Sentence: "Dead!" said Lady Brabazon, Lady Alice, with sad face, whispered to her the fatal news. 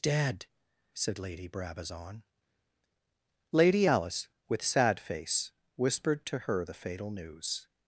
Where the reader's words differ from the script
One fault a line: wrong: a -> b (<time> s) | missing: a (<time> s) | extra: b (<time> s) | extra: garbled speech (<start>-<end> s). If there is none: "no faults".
no faults